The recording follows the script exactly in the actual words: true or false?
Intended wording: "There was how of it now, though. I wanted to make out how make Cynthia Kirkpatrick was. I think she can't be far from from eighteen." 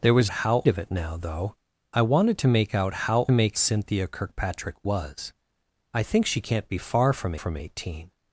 true